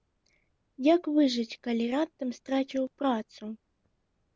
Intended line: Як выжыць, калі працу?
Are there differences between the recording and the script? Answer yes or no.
yes